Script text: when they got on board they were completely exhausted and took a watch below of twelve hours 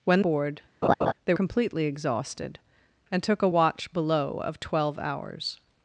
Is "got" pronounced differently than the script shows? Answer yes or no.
yes